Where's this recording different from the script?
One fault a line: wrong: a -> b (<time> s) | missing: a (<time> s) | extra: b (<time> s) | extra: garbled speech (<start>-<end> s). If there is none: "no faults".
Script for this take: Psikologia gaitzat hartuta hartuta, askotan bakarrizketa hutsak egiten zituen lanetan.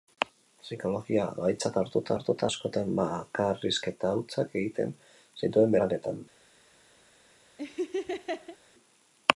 no faults